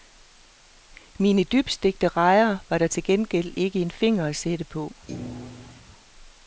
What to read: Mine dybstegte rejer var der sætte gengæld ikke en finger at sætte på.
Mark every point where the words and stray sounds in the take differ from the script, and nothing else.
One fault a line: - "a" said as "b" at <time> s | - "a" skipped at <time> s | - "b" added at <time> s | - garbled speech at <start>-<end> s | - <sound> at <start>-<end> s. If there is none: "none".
- "sætte" said as "til" at 2.9 s
- thud at 5.1-5.8 s